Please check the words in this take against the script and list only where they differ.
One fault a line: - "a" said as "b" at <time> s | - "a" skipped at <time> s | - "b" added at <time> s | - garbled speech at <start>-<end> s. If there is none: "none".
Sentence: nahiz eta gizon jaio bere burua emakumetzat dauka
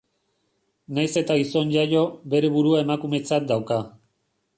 none